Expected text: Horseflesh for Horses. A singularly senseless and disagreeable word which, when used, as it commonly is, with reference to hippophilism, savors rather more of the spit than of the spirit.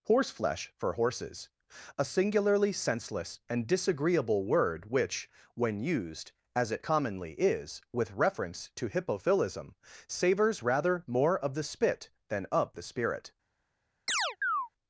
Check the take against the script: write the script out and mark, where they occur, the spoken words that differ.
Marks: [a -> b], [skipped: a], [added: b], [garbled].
Horseflesh for Horses. A singularly senseless and disagreeable word which, when used, as it commonly is, with reference to hippophilism, savors rather more of the spit than of the spirit.